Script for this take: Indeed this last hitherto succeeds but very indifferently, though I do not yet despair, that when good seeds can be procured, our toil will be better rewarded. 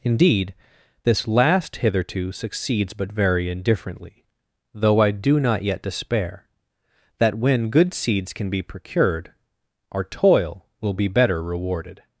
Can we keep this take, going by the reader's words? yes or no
yes